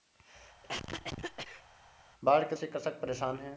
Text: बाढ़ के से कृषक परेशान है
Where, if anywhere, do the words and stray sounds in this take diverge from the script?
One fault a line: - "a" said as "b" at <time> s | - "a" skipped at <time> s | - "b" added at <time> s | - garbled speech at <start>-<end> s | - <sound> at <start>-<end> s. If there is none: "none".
- cough at 0.6-1.7 s